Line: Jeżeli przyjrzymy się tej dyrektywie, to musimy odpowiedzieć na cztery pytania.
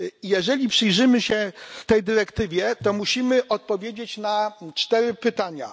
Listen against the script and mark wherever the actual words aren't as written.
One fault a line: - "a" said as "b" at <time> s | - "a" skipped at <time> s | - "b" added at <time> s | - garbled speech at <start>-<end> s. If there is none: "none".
none